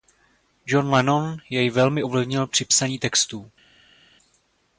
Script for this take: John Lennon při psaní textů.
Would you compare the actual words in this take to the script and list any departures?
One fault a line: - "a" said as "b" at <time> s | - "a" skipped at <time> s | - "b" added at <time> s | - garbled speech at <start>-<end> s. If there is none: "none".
- "jej velmi ovlivnil" added at 1.5 s